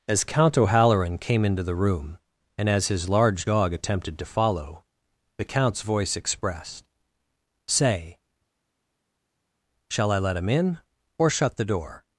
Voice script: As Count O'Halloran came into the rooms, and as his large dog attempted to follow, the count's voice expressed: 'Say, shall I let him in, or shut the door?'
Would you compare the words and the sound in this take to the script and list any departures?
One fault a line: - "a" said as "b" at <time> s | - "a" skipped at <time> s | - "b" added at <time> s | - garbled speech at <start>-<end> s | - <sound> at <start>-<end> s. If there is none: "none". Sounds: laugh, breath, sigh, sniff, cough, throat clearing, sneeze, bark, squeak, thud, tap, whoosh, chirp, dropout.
- "rooms" said as "room" at 1.8 s